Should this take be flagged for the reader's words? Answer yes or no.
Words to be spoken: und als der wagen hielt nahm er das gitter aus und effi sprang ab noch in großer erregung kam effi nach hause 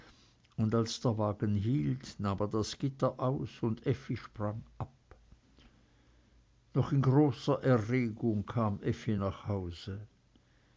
no